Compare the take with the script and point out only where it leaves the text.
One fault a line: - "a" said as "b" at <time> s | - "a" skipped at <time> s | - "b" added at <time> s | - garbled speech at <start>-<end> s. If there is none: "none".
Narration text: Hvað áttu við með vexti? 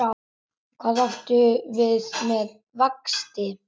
none